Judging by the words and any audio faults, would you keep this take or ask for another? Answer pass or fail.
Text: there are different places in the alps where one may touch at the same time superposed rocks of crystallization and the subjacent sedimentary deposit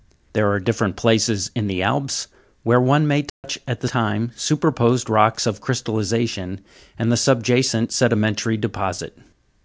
fail